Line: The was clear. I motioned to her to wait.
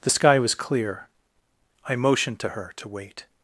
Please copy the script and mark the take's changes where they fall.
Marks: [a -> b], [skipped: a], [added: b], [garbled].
The [added: sky] was clear. I motioned to her to wait.